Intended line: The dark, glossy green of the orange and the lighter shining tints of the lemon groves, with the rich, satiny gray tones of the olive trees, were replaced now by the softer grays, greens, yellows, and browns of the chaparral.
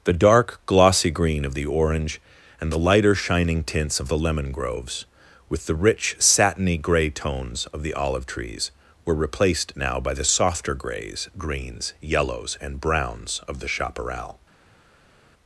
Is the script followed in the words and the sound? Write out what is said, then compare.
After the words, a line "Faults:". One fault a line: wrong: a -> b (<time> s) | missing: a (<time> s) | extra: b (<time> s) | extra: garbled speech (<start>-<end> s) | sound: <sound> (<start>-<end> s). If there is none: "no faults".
The dark, glossy green of the orange and the lighter shining tints of the lemon groves, with the rich, satiny gray tones of the olive trees, were replaced now by the softer grays, greens, yellows, and browns of the chaparral.
Faults:
no faults